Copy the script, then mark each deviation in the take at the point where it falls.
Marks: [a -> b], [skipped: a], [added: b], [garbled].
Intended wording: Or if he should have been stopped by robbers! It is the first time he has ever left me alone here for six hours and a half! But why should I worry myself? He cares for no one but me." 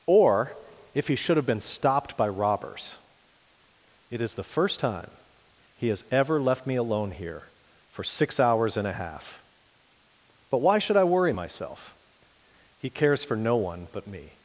Or if he should have been stopped by robbers! It is the first time he has ever left me alone here for six hours and a half! But why should I worry myself? He cares for no one but me."